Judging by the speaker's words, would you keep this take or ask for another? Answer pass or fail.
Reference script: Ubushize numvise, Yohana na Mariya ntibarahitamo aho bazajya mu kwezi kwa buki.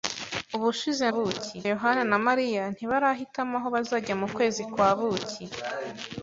fail